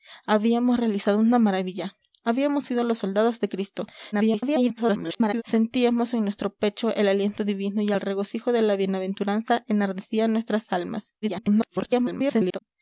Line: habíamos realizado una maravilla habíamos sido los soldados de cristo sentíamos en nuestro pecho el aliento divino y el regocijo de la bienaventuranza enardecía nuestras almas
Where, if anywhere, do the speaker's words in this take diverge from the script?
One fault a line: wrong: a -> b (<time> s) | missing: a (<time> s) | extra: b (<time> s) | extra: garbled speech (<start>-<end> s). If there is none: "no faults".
extra: garbled speech (4.1-5.4 s)
extra: garbled speech (11.2-12.6 s)